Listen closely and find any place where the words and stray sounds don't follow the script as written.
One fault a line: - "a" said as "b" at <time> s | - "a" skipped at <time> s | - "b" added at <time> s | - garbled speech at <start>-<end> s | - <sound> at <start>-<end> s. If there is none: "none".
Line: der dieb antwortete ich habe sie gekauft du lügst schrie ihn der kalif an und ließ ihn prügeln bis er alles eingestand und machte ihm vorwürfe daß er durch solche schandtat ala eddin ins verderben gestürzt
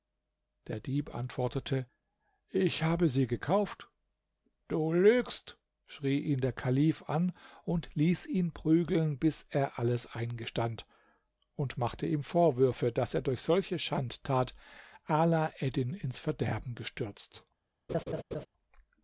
- laugh at 17.9-18.5 s